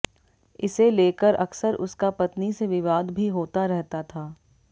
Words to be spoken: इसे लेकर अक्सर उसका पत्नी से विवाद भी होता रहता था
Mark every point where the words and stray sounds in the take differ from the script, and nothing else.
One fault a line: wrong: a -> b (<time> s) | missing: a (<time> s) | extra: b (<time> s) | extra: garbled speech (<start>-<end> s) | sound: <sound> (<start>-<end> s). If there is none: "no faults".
no faults